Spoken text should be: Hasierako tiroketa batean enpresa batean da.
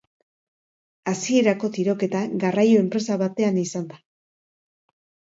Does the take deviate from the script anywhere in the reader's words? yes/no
yes